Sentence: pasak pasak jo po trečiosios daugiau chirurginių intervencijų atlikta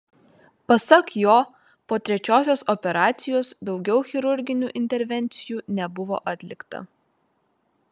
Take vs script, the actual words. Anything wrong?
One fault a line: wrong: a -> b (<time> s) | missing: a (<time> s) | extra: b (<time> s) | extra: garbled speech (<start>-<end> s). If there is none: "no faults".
missing: pasak (1.1 s)
extra: operacijos (2.8 s)
extra: nebuvo (5.8 s)